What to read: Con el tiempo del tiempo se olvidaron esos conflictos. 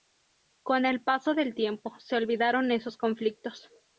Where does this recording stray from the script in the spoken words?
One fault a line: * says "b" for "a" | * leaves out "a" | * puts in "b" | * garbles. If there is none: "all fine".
* says "paso" for "tiempo"